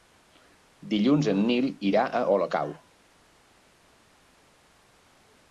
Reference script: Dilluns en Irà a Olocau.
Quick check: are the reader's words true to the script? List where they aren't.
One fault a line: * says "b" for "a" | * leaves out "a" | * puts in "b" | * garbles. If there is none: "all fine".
* puts in "Nil"